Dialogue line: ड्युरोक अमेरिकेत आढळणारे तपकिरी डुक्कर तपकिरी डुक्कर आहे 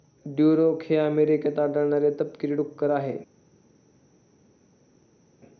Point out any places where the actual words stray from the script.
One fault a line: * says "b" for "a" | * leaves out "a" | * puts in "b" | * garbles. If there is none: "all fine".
* puts in "हे"
* leaves out "तपकिरी डुक्कर"